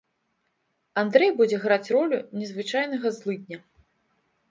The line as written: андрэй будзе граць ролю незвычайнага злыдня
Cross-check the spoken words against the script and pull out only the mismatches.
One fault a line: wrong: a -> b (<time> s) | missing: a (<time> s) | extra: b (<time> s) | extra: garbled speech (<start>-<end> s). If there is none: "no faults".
no faults